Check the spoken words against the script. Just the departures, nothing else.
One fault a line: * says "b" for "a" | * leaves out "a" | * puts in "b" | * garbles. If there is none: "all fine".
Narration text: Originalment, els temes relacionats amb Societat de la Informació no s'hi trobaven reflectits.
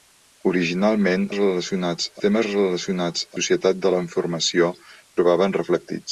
* says "relacionats" for "els"
* leaves out "amb"
* leaves out "no s'hi"